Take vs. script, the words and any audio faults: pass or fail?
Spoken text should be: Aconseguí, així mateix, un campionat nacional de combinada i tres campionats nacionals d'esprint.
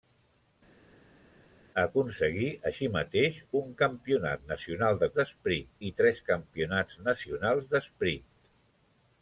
fail